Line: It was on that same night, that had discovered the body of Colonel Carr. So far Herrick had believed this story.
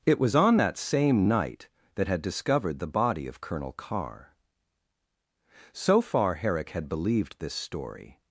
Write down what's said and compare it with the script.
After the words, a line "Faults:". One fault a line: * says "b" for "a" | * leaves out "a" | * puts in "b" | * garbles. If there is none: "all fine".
It was on that same night, that had discovered the body of Colonel Carr. So far Herrick had believed this story.
Faults:
all fine